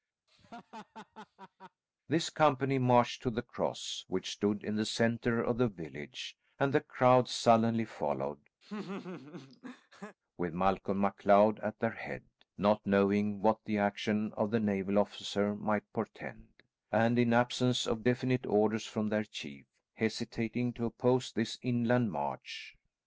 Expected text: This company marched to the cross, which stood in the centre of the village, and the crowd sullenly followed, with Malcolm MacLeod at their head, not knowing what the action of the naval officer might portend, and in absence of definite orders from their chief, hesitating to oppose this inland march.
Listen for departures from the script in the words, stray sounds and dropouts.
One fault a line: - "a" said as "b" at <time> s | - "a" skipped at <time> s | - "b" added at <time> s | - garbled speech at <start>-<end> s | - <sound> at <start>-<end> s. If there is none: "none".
- laugh at 0.3-1.8 s
- laugh at 8.6-10.2 s